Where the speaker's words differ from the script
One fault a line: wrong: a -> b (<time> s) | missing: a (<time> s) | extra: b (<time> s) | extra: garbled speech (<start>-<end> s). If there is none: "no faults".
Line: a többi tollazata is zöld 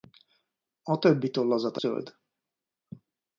missing: is (1.8 s)